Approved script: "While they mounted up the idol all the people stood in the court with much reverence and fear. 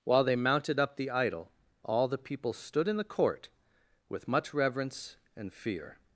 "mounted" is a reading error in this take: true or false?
false